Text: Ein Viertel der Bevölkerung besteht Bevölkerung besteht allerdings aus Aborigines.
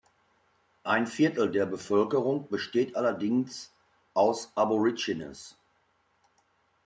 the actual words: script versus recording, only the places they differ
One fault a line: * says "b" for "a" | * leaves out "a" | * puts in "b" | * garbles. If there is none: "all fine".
* leaves out "Bevölkerung besteht"